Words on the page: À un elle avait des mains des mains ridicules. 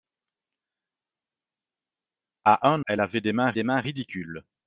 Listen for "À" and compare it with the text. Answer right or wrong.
right